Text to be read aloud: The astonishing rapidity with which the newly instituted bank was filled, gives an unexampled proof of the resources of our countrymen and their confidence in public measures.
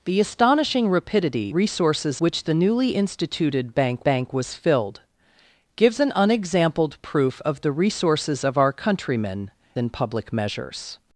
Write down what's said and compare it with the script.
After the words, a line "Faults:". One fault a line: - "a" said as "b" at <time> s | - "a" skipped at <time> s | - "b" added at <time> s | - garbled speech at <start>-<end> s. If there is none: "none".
The astonishing rapidity resources which the newly instituted bank bank was filled, gives an unexampled proof of the resources of our countrymen in public measures.
Faults:
- "with" said as "resources" at 1.5 s
- "bank" added at 4.0 s
- "and their confidence" skipped at 9.5 s